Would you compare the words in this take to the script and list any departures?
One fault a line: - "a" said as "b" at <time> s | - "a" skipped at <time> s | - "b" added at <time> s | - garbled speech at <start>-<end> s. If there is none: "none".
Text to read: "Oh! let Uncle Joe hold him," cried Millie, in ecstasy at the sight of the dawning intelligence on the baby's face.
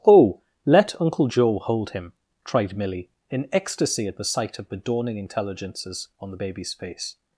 - "cried" said as "tried" at 2.4 s
- "intelligence" said as "intelligences" at 5.2 s